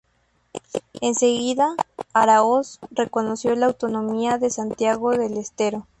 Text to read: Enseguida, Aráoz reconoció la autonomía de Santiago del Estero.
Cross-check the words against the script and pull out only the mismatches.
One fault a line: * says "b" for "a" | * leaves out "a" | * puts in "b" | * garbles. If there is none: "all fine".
all fine